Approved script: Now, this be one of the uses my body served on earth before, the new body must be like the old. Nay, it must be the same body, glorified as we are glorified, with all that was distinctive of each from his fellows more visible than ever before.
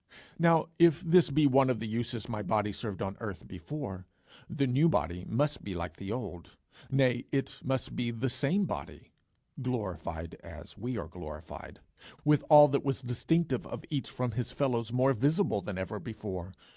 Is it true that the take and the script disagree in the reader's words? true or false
true